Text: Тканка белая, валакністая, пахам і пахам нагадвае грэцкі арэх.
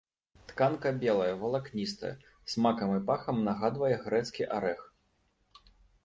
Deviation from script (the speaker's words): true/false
true